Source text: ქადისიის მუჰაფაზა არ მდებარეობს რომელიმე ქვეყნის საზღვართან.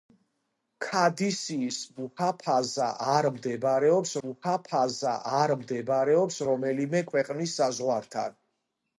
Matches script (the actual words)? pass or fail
fail